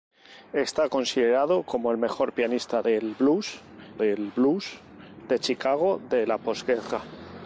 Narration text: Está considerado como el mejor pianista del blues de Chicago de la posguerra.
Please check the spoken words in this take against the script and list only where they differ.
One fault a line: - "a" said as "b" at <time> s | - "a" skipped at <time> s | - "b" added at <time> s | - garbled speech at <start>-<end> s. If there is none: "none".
- "del blues" added at 4.0 s